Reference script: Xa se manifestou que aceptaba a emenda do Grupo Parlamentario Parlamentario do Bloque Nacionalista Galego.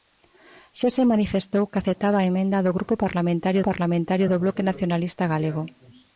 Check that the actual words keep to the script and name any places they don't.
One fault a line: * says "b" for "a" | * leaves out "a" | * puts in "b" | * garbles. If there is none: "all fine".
all fine